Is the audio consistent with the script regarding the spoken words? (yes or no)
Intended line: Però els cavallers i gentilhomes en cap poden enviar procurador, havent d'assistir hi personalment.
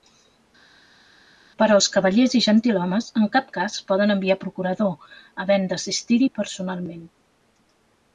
no